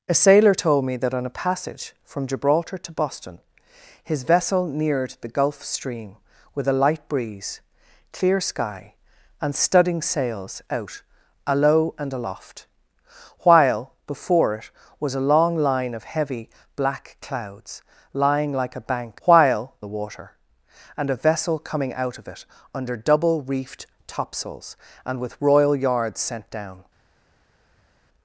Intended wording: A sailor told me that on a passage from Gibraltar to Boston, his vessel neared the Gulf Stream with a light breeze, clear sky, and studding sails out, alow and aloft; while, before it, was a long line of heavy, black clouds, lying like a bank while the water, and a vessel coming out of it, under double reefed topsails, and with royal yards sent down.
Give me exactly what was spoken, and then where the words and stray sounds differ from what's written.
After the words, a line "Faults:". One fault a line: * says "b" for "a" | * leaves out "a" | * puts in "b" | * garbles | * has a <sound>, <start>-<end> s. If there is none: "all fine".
A sailor told me that on a passage from Gibraltar to Boston, his vessel neared the Gulf Stream with a light breeze, clear sky, and studding sails out, alow and aloft; while, before it, was a long line of heavy, black clouds, lying like a bank while the water, and a vessel coming out of it, under double reefed topsails, and with royal yards sent down.
Faults:
all fine